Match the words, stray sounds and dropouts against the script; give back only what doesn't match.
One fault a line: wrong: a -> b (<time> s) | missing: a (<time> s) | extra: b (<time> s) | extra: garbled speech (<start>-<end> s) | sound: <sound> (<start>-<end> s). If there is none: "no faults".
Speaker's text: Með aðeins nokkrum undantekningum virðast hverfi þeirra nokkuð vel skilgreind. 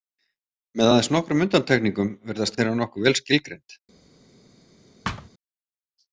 missing: hverfi (2.6 s)
sound: thud (5.0-5.3 s)